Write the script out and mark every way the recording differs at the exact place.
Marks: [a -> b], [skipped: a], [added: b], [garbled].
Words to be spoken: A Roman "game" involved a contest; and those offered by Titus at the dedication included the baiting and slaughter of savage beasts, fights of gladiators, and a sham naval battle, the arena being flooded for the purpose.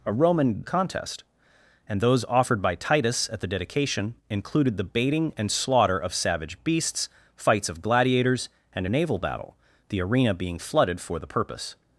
A Roman [skipped: "game" involved] a contest; and those offered by Titus at the dedication included the baiting and slaughter of savage beasts, fights of gladiators, and a [skipped: sham] naval battle, the arena being flooded for the purpose.